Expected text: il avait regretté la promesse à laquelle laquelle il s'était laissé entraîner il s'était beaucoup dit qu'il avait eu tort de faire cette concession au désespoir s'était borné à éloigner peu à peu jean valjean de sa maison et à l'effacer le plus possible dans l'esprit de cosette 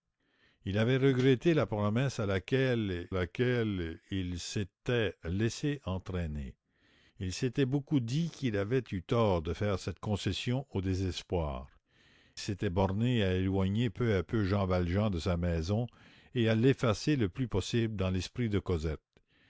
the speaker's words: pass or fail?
pass